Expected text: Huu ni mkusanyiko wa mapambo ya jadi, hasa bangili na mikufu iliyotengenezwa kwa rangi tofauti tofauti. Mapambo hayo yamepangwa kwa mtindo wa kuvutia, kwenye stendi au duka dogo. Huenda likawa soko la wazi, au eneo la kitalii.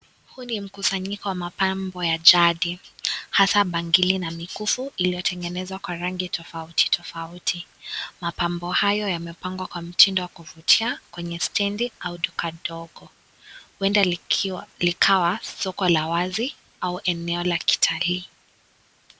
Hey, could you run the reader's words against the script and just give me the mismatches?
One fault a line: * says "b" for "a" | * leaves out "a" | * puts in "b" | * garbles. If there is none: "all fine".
all fine